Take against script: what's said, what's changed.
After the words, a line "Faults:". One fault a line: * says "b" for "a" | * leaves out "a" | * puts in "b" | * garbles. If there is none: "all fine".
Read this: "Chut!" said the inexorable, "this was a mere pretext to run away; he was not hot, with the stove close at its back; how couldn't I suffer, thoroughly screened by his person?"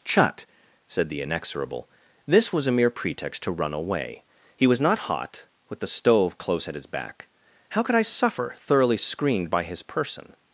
"Chut!" said the inexorable, "this was a mere pretext to run away; he was not hot, with the stove close at his back; how could I suffer, thoroughly screened by his person?"
Faults:
* says "his" for "its"
* says "could" for "couldn't"